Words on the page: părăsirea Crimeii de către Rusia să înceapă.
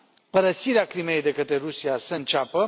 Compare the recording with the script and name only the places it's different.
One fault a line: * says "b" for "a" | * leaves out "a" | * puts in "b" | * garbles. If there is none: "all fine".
all fine